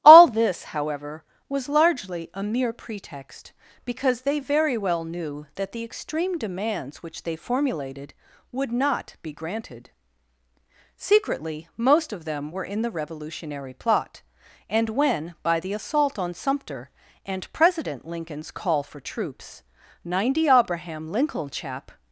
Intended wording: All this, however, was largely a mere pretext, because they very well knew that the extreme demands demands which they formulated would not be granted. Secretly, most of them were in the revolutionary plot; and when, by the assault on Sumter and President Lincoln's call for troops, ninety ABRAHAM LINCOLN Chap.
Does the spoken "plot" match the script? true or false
true